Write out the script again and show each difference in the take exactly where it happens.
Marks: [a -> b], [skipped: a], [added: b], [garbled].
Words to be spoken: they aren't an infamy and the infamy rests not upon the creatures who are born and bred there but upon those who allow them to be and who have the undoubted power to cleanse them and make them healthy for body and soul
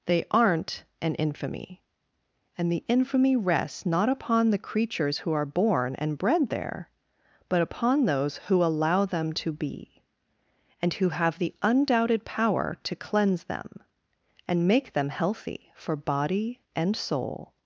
they aren't an infamy and the infamy rests not upon the creatures who are born and bred there but upon those who allow them to be and who have the undoubted power to cleanse them and make them healthy for body and soul